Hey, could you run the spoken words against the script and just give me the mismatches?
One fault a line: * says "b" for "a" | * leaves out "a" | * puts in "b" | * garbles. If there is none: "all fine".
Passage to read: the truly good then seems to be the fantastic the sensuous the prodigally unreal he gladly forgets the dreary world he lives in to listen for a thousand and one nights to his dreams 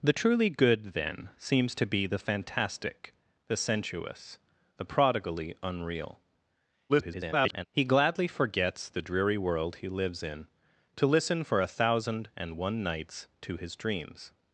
* garbles